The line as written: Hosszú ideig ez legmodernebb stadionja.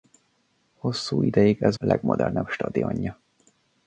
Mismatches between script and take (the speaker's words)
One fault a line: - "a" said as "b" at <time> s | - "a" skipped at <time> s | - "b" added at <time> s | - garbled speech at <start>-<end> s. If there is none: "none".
none